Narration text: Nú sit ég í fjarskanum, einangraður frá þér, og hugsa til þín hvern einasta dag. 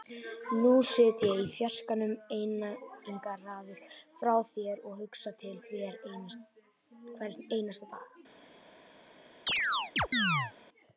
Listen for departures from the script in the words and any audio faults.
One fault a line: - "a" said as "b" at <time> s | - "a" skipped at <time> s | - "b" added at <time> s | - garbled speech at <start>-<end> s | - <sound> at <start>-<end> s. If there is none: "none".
- "þín" skipped at 5.5 s
- chirp at 9.5-10.5 s